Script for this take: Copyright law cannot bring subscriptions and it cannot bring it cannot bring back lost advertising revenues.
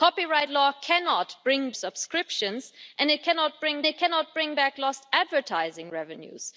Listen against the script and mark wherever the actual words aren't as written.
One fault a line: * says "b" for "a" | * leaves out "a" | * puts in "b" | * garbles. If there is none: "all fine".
all fine